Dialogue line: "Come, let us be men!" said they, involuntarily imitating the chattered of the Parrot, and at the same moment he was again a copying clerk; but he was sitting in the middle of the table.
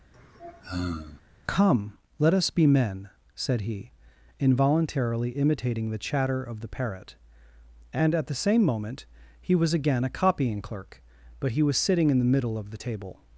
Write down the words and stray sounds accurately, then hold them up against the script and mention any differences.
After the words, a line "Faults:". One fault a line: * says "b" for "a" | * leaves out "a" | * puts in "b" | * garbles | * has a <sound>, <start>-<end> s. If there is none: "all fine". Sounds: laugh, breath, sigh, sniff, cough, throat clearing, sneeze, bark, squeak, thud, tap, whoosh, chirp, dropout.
"Come, let us be men!" said he, involuntarily imitating the chatter of the Parrot, and at the same moment he was again a copying clerk; but he was sitting in the middle of the table.
Faults:
* has a sigh, 0.1-1.2 s
* says "he" for "they"
* says "chatter" for "chattered"